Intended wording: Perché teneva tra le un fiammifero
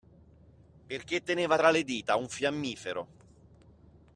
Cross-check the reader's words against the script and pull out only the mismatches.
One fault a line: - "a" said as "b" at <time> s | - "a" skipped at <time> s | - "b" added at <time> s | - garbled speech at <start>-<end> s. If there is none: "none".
- "dita" added at 1.8 s